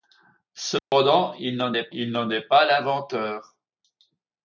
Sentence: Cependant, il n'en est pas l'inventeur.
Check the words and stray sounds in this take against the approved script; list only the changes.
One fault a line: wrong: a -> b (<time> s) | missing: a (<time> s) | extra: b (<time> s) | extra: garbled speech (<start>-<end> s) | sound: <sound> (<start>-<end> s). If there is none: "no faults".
sound: dropout (0.8-0.9 s)
extra: il n'en est (1.9 s)